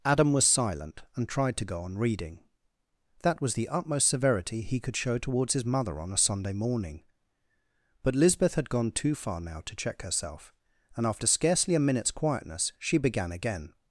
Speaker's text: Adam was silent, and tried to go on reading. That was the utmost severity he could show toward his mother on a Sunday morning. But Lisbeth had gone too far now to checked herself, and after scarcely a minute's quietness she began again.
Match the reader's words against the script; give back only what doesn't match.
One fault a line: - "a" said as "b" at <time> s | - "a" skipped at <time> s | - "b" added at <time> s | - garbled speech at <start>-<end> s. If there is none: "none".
- "toward" said as "towards" at 5.2 s
- "checked" said as "check" at 9.8 s